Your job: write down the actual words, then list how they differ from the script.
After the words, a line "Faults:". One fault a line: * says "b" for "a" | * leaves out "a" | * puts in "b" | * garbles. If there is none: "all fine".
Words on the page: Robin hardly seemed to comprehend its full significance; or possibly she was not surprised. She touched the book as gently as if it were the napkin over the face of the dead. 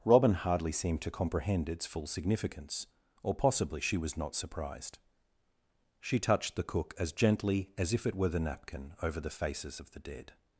Robin hardly seemed to comprehend its full significance; or possibly she was not surprised. She touched the cook as gently as if it were the napkin over the faces of the dead.
Faults:
* says "cook" for "book"
* says "faces" for "face"